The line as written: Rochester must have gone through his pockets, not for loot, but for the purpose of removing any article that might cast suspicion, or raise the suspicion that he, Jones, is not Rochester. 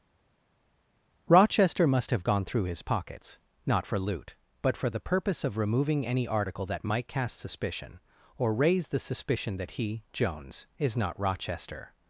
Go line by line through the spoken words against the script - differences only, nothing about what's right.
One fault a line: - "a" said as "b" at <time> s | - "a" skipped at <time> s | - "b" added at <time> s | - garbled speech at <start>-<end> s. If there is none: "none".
none